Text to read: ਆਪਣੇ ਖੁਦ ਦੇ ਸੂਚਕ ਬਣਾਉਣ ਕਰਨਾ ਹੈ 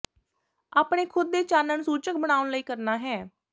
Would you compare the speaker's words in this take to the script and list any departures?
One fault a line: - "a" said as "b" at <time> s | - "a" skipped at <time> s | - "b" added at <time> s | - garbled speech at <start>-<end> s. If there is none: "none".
- "ਚਾਨਣ" added at 1.4 s
- "ਲਈ" added at 2.5 s